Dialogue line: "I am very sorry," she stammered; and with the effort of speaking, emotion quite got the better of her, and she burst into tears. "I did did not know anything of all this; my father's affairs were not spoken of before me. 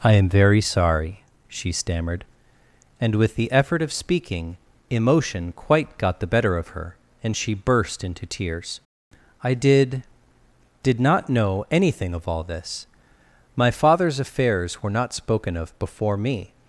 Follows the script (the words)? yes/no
yes